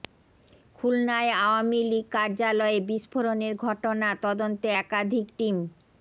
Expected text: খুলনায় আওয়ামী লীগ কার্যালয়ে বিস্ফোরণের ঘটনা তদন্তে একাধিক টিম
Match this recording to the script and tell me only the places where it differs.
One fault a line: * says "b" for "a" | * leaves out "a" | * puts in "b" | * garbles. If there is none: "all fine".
all fine